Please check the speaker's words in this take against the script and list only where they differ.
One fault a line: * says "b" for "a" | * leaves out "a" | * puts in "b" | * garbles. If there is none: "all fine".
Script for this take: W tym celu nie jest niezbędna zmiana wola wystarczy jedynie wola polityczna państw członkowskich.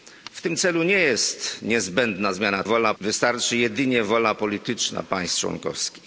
all fine